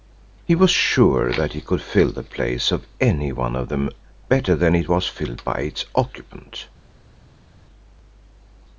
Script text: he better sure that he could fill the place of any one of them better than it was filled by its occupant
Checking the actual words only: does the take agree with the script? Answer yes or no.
no